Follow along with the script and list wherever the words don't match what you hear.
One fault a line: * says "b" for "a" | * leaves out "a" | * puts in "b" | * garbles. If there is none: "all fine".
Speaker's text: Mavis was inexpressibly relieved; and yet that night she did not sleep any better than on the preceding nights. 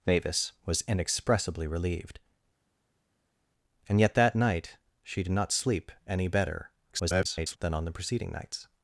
* garbles